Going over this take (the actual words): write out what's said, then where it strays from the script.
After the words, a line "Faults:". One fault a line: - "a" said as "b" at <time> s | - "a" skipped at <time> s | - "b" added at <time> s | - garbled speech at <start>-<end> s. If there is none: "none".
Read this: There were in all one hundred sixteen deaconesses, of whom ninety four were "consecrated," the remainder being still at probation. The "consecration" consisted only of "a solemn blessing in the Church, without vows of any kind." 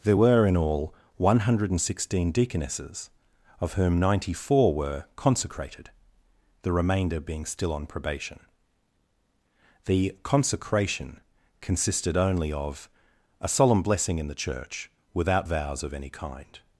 There were in all one hundred sixteen deaconesses, of whom ninety four were "consecrated," the remainder being still on probation. The "consecration" consisted only of "a solemn blessing in the Church, without vows of any kind."
Faults:
- "at" said as "on" at 7.7 s